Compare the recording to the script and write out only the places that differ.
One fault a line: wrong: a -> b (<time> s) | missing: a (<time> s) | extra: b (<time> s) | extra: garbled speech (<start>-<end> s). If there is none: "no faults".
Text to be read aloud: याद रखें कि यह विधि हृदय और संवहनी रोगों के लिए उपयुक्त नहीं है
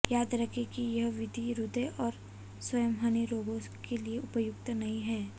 no faults